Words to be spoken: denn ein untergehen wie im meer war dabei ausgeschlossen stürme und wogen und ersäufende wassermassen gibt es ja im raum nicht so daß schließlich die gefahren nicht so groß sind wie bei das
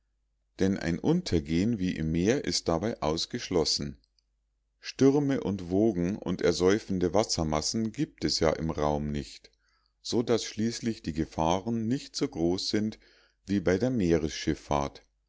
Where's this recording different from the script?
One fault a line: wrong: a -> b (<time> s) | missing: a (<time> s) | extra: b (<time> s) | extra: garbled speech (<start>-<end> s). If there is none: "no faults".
wrong: war -> ist (2.4 s)
wrong: das -> der (13.8 s)